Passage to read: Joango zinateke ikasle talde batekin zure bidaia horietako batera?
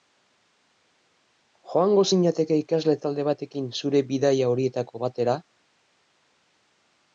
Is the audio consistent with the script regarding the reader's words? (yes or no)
yes